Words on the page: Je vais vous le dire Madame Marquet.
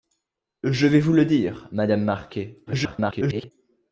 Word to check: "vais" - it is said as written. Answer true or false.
true